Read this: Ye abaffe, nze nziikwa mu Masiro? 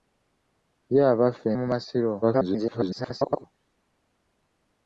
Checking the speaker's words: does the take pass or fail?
fail